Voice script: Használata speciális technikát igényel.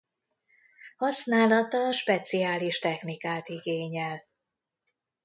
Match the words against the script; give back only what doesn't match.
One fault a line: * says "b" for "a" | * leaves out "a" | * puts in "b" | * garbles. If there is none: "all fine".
all fine